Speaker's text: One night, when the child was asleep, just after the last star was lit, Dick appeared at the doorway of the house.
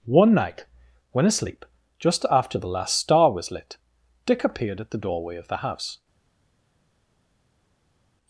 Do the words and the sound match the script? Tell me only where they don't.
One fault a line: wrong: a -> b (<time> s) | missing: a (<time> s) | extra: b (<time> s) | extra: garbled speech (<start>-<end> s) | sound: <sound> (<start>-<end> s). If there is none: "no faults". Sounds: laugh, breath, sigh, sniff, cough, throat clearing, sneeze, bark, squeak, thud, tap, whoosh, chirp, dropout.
missing: the child was (1.3 s)